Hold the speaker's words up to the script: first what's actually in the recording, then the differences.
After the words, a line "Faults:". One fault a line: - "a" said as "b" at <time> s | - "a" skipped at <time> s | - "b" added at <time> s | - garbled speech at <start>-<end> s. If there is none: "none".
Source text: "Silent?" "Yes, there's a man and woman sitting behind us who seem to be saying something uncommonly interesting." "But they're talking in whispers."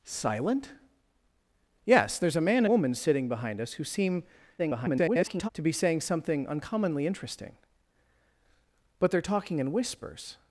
"Silent?" "Yes, there's a man woman sitting behind us who seem [garbled] to be saying something uncommonly interesting." "But they're talking in whispers."
Faults:
- "and" skipped at 2.6 s
- garbled speech at 4.6-5.5 s